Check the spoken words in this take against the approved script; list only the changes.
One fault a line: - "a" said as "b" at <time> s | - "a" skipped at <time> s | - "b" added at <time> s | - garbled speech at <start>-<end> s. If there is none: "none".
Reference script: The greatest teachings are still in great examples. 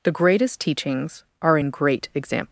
- "still" skipped at 1.6 s